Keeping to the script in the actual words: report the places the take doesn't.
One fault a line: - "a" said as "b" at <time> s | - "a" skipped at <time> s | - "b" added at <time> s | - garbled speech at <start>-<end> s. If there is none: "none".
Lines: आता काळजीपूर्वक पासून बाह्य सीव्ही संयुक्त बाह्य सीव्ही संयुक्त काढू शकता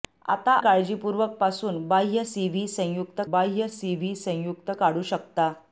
none